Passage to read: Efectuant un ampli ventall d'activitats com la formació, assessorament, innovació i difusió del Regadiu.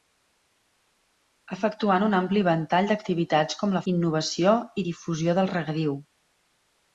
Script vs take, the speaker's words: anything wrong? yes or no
yes